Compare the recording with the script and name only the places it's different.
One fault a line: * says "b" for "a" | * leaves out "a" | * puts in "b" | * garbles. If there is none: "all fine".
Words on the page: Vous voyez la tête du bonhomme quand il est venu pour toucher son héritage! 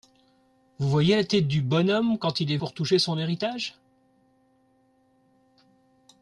* leaves out "venu"